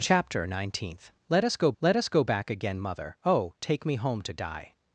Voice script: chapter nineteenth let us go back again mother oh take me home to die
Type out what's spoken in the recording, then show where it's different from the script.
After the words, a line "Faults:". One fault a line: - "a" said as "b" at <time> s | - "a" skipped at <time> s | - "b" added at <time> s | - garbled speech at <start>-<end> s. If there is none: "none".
chapter nineteenth let us go let us go back again mother oh take me home to die
Faults:
- "let us go" added at 1.8 s